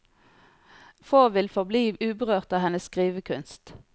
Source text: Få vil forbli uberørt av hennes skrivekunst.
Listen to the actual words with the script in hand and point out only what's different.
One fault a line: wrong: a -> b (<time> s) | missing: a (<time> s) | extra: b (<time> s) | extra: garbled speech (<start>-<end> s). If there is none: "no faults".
no faults